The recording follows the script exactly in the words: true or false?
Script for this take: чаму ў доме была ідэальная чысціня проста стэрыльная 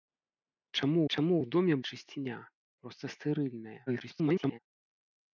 false